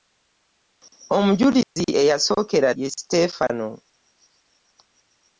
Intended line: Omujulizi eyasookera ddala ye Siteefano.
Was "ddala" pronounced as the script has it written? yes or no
no